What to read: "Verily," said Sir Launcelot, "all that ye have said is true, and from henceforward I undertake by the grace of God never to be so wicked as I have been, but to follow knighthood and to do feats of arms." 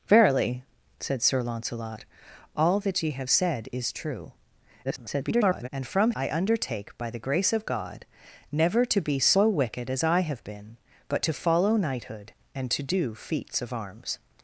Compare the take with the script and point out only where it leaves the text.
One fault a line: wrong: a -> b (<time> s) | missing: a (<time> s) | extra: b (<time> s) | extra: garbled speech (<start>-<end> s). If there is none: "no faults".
extra: garbled speech (4.8-5.7 s)
missing: henceforward (6.1 s)